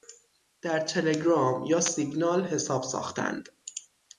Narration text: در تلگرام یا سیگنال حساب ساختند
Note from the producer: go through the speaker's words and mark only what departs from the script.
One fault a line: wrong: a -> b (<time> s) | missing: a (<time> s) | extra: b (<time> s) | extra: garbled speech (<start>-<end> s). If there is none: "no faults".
no faults